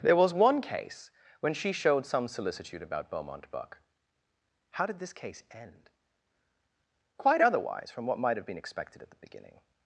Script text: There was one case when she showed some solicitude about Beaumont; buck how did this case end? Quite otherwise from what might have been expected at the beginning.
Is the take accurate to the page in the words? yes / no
yes